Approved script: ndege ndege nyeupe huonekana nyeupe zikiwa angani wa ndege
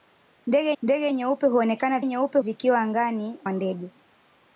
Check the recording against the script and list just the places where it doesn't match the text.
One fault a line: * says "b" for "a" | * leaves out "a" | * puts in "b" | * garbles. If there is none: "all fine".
all fine